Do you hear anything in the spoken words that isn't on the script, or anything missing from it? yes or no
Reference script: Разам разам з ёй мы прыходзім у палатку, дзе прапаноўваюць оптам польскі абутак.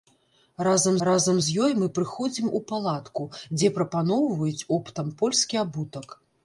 no